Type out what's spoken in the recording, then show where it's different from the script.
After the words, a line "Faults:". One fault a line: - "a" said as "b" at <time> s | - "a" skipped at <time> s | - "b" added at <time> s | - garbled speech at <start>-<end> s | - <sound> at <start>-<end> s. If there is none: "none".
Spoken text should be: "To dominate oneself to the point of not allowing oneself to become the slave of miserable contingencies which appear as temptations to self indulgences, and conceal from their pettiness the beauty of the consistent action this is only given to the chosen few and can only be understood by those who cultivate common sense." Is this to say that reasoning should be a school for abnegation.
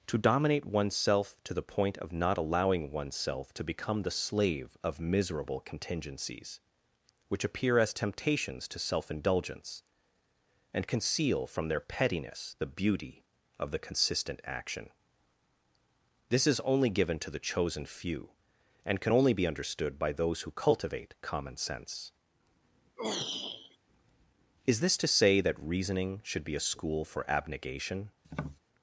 "To dominate oneself to the point of not allowing oneself to become the slave of miserable contingencies which appear as temptations to self indulgence, and conceal from their pettiness the beauty of the consistent action this is only given to the chosen few and can only be understood by those who cultivate common sense." Is this to say that reasoning should be a school for abnegation.
Faults:
- "indulgences" said as "indulgence" at 9.1 s
- throat clearing at 23.0-23.8 s
- tap at 28.2-28.6 s